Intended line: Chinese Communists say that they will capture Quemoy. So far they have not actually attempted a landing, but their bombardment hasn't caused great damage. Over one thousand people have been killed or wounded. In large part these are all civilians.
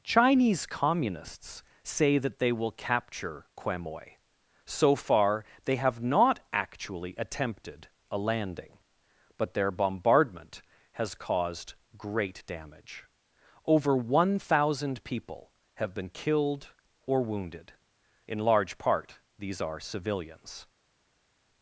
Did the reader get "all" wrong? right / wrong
wrong